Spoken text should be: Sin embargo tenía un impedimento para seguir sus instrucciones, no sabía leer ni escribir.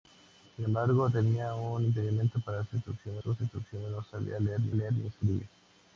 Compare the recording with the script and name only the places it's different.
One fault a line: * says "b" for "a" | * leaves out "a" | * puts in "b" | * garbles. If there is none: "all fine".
* says "instrucciones" for "seguir"
* puts in "leer ni"